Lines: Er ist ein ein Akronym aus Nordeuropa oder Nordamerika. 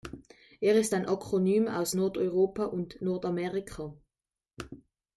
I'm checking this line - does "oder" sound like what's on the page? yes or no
no